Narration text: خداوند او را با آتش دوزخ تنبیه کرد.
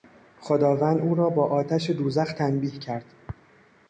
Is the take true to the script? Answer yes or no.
yes